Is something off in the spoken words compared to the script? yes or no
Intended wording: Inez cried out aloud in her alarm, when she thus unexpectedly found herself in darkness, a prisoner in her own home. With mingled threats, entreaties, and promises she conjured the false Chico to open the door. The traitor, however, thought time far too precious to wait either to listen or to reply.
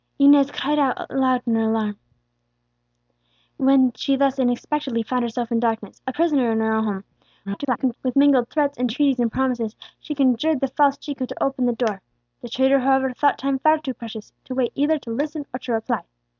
yes